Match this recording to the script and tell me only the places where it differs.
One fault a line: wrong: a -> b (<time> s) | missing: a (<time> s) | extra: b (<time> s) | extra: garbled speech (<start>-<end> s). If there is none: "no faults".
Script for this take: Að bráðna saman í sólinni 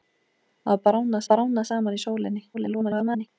extra: bráðna (1.3 s)
extra: garbled speech (2.5-3.3 s)